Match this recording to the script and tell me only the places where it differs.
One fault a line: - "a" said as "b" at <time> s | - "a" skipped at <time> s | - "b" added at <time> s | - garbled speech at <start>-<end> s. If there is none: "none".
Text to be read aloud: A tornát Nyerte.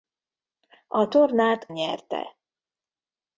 none